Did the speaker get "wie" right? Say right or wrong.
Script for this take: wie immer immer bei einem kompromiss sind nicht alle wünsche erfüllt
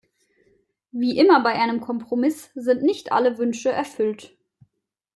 right